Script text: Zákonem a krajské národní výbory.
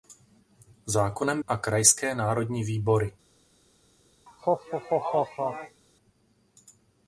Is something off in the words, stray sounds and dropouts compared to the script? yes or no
yes